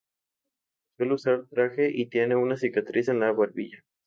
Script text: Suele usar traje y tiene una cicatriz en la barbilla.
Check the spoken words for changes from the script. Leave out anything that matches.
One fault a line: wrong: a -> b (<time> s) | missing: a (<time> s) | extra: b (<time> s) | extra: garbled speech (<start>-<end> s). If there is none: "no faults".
no faults